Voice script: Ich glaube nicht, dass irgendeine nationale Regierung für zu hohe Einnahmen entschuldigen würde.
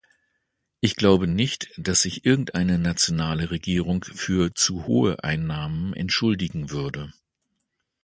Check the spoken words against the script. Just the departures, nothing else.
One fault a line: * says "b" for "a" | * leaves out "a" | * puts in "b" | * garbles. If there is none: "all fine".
* puts in "sich"